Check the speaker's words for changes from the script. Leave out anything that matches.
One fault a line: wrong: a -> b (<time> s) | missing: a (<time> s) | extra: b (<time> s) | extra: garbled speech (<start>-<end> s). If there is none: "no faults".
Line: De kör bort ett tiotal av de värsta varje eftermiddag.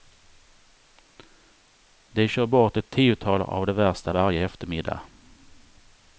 no faults